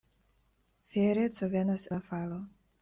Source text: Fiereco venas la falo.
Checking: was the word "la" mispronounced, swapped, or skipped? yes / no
no